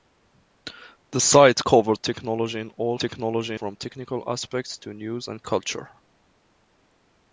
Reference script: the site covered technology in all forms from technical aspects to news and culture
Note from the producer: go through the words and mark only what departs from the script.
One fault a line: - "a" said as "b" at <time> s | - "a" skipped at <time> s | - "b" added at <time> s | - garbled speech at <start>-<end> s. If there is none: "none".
- "forms" said as "technology" at 3.0 s